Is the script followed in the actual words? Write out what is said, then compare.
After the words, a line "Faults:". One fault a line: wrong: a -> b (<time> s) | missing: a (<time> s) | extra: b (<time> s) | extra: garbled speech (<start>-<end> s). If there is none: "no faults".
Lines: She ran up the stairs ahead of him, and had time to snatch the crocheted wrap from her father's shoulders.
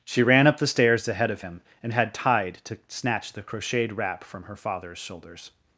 She ran up the stairs ahead of him, and had tide to snatch the crocheted wrap from her father's shoulders.
Faults:
wrong: time -> tide (2.1 s)